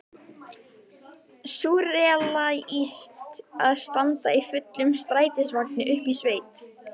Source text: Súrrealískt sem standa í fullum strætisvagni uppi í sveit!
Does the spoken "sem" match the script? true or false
false